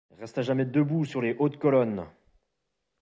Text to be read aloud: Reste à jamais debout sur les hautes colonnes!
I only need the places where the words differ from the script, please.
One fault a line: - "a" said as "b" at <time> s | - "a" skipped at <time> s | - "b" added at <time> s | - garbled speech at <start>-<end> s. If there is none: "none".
none